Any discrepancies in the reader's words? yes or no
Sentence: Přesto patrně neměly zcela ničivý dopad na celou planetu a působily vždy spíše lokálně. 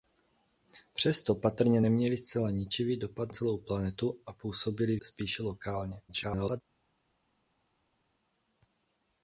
yes